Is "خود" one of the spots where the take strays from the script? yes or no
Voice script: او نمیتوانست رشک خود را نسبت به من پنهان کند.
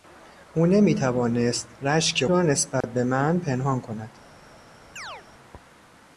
yes